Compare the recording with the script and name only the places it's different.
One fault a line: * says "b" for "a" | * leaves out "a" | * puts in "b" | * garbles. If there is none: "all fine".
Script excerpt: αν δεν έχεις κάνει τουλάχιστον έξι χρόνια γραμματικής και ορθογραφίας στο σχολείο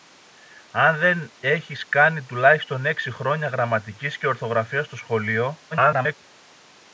* garbles